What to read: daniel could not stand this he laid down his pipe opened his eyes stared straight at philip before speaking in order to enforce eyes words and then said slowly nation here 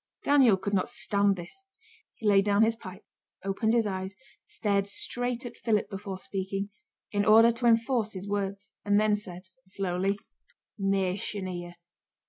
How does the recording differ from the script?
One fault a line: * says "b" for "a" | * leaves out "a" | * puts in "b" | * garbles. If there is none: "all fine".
* says "his" for "eyes"